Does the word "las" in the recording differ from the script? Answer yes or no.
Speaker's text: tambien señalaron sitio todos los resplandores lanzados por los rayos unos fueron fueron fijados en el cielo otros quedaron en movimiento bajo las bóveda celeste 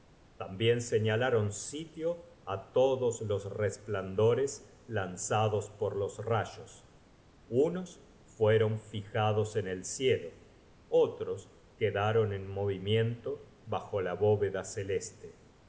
yes